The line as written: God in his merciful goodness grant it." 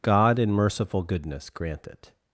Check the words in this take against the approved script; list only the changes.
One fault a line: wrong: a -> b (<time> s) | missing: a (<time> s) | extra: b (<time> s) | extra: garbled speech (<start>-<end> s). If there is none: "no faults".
missing: his (0.5 s)